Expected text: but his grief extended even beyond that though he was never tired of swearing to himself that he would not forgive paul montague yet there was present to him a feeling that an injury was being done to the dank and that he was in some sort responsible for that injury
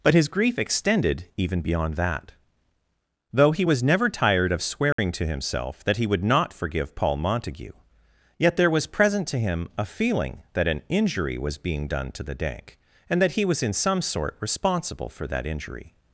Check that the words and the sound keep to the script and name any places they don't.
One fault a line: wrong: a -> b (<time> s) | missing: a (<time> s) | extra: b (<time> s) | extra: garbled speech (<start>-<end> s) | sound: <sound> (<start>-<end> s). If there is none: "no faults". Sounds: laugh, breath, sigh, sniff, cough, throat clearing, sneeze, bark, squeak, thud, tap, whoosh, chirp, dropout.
sound: dropout (4.9-5.0 s)